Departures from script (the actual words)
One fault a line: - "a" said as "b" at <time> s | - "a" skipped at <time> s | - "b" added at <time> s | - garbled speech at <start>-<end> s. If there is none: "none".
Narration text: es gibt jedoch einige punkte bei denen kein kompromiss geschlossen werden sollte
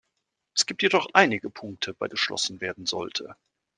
- "denen kein kompromiss" skipped at 2.1 s